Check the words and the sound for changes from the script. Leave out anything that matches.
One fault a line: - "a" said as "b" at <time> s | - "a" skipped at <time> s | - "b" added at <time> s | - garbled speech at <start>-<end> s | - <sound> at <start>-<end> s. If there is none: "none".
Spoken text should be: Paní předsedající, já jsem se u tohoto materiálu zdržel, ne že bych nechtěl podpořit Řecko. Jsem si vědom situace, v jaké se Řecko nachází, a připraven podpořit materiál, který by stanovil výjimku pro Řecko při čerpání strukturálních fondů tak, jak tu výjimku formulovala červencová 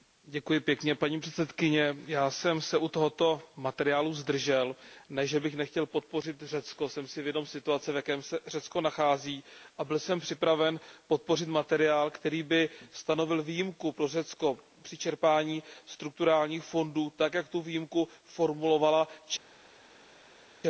- "byl jsem" added at 9.8 s